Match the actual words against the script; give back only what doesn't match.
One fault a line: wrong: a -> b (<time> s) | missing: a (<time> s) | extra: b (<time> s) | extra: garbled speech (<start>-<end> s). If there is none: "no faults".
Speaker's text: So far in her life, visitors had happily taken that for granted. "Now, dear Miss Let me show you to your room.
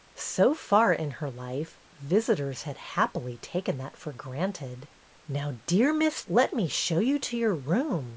no faults